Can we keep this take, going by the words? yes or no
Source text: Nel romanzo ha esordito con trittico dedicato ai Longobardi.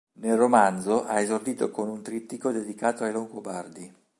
no